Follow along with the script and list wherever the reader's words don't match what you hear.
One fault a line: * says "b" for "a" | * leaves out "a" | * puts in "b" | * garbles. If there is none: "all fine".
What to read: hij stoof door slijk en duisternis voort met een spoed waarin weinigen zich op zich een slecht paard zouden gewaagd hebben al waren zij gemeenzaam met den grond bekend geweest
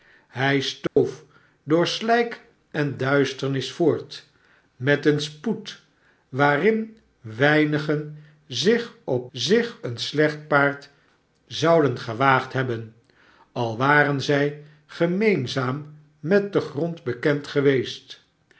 all fine